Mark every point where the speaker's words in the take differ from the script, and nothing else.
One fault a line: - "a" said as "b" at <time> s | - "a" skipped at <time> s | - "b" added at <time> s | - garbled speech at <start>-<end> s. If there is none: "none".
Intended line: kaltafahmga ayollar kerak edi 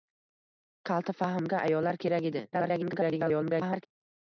- garbled speech at 2.5-3.9 s